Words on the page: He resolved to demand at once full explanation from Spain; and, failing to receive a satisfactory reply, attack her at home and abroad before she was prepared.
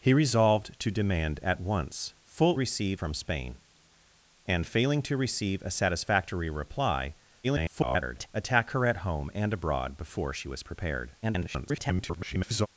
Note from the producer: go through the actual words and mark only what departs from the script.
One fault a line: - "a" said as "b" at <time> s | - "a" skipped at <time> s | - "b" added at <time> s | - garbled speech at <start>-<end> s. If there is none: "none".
- "explanation" said as "receive" at 2.5 s
- garbled speech at 7.4-8.3 s
- garbled speech at 11.2-12.7 s